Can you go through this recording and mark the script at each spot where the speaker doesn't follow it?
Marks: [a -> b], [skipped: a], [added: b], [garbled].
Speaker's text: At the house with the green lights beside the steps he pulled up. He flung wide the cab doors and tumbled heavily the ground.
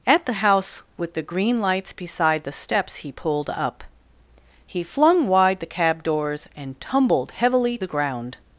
At the house with the green lights beside the steps he pulled up. He flung wide the cab doors and tumbled heavily the ground.